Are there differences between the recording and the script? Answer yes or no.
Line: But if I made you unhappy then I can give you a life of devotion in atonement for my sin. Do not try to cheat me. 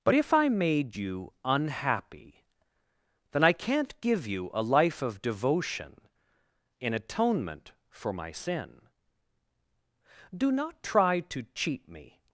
yes